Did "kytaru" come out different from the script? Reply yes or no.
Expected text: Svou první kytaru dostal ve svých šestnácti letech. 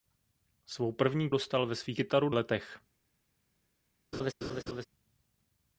yes